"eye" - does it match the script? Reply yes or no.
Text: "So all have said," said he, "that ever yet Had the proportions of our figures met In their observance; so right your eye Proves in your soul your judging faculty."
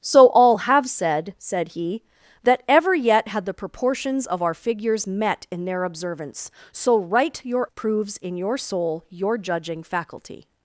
no